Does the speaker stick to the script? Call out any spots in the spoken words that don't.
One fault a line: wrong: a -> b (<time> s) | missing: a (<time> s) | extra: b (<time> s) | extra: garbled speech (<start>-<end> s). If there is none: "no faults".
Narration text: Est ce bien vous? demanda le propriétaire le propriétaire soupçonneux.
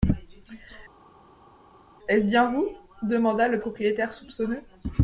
missing: le propriétaire (4.1 s)